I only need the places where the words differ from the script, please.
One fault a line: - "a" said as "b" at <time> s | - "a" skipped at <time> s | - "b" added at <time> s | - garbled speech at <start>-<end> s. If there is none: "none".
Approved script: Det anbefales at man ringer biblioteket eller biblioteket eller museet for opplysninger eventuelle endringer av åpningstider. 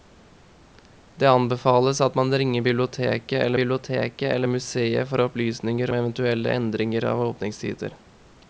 none